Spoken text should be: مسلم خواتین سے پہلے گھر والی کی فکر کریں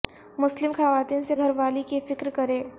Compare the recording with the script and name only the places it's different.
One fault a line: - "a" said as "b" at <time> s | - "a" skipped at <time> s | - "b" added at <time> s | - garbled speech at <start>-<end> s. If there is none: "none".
- "پہلے" skipped at 1.3 s